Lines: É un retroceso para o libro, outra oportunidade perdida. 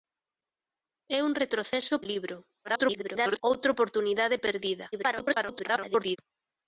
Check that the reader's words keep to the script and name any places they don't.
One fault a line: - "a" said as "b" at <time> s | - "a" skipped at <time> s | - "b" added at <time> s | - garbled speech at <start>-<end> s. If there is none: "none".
- "para" skipped at 1.9 s
- garbled speech at 2.6-3.4 s
- garbled speech at 4.9-6.2 s